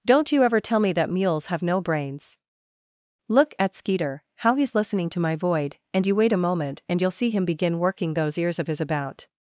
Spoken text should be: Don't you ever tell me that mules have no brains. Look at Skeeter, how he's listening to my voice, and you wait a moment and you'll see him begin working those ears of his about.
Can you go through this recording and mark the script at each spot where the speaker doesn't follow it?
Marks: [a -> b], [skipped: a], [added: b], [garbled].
Don't you ever tell me that mules have no brains. Look at Skeeter, how he's listening to my [voice, -> void] and you wait a moment and you'll see him begin working those ears of his about.